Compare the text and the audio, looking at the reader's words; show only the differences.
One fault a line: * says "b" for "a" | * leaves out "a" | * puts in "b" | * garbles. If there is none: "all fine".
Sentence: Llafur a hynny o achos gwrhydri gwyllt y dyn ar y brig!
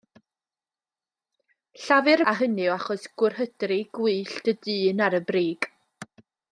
all fine